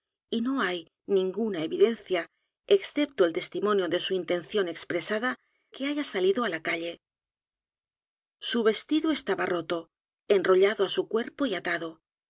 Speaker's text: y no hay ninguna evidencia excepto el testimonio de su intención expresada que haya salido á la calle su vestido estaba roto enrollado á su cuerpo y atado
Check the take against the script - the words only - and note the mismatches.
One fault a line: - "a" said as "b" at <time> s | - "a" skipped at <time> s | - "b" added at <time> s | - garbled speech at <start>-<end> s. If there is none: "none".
none